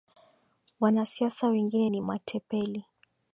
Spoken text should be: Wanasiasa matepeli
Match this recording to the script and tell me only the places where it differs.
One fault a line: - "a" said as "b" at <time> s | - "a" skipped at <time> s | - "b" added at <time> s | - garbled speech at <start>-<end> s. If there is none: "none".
- "wengine ni" added at 1.5 s